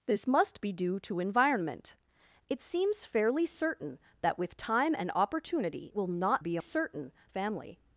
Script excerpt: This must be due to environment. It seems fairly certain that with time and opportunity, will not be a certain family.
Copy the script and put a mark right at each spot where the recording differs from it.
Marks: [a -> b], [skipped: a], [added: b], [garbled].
This must be due to environment. It seems fairly certain that with time and opportunity, will not be a certain family.